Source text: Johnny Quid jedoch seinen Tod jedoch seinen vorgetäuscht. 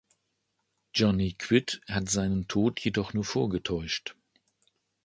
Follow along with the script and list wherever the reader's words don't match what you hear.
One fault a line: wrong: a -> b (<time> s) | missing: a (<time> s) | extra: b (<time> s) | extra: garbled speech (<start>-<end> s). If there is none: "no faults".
wrong: jedoch -> hat (1.9 s)
wrong: seinen -> nur (3.1 s)